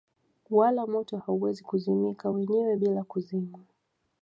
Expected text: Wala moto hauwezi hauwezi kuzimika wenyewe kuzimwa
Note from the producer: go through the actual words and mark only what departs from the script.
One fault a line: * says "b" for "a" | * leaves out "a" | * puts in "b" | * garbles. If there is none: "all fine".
* leaves out "hauwezi"
* puts in "bila"